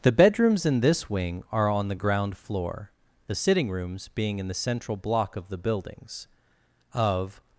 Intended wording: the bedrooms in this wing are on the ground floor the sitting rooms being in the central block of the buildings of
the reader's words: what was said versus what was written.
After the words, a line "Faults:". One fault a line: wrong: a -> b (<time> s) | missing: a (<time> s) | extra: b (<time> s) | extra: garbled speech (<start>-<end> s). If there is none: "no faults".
the bedrooms in this wing are on the ground floor the sitting rooms being in the central block of the buildings of
Faults:
no faults